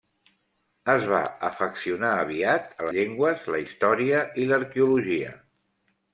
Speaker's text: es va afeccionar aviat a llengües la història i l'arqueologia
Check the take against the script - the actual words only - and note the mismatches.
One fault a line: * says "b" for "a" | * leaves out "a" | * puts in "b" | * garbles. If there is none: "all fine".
all fine